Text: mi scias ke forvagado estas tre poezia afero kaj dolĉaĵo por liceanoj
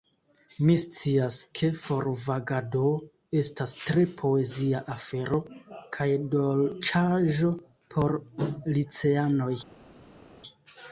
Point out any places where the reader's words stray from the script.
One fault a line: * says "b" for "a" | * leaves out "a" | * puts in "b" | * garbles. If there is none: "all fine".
all fine